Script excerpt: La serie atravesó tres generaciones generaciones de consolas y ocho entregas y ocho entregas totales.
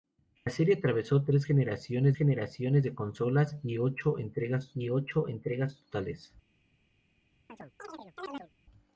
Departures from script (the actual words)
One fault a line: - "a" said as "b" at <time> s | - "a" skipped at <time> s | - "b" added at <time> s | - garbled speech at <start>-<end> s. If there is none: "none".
none